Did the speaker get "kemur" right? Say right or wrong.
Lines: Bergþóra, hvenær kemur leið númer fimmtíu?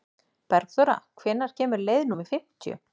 right